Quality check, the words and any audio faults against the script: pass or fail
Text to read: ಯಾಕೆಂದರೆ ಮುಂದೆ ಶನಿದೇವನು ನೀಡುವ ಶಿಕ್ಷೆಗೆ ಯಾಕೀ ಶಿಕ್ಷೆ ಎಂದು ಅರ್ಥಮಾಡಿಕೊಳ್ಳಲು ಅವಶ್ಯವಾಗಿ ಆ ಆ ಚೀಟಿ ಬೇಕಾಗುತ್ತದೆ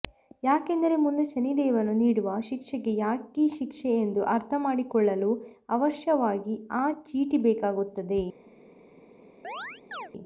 fail